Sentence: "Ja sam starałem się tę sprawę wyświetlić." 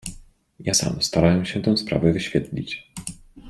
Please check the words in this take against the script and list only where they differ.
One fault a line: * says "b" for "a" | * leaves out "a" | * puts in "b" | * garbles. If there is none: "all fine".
all fine